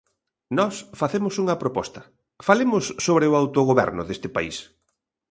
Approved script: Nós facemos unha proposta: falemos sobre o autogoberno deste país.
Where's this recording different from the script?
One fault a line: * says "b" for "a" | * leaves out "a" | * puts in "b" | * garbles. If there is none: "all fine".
all fine